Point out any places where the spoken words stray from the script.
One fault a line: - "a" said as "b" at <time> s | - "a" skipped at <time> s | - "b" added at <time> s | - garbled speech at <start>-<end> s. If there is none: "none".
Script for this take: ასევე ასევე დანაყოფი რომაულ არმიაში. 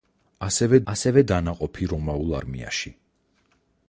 none